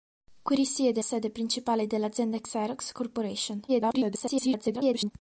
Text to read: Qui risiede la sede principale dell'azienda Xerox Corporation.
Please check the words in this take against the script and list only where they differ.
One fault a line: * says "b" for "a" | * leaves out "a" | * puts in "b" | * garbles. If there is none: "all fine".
* leaves out "la"
* garbles